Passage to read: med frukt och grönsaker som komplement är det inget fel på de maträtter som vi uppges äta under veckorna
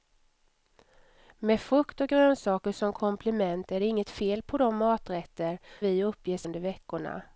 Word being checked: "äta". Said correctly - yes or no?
no